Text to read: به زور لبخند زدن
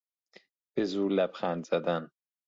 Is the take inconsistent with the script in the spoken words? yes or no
no